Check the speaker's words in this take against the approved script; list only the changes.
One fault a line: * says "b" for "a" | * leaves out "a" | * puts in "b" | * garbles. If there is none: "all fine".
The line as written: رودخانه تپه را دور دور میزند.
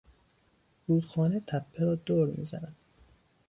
* leaves out "دور"